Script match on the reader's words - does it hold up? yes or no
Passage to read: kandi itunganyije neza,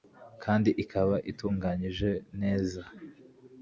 no